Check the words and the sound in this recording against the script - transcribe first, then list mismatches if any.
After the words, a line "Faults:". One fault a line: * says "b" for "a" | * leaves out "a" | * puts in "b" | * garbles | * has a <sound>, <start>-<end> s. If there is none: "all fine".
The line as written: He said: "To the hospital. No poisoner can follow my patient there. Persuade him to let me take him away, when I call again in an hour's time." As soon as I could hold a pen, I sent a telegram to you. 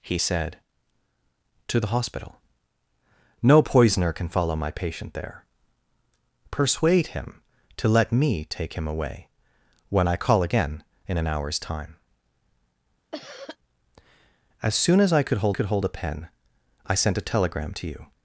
He said: "To the hospital. No poisoner can follow my patient there. Persuade him to let me take him away, when I call again in an hour's time." As soon as I could hold could hold a pen, I sent a telegram to you.
Faults:
* has a cough, 13.1-13.6 s
* puts in "could hold"